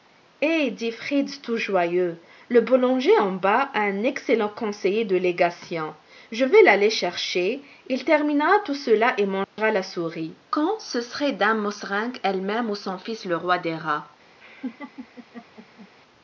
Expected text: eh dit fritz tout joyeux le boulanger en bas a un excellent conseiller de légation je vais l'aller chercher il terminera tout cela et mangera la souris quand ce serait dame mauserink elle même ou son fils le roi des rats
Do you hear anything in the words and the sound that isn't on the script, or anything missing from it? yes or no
yes